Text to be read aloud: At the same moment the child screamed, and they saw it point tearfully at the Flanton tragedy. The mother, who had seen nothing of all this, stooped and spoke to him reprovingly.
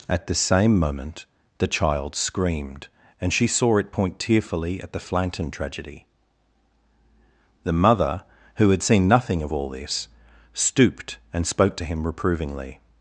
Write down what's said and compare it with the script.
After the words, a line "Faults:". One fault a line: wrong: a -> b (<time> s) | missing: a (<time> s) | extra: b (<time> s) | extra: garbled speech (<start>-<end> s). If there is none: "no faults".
At the same moment the child screamed, and she saw it point tearfully at the Flanton tragedy. The mother, who had seen nothing of all this, stooped and spoke to him reprovingly.
Faults:
wrong: they -> she (3.3 s)